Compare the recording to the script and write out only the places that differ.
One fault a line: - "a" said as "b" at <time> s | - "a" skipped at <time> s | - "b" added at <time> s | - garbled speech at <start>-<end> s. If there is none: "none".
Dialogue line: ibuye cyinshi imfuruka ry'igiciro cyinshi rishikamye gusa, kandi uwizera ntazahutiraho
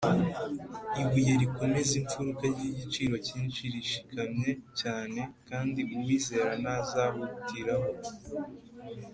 - "cyinshi" said as "rikomeza" at 1.4 s
- "gusa" said as "cyane" at 4.8 s